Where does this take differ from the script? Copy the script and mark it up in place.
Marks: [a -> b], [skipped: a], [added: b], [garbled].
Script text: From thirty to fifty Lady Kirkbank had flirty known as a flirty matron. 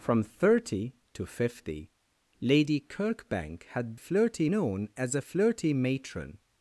From thirty to fifty Lady Kirkbank had flirty known as a flirty matron.